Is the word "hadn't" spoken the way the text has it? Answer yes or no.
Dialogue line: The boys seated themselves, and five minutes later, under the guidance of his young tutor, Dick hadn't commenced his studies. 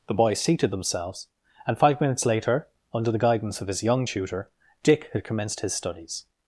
no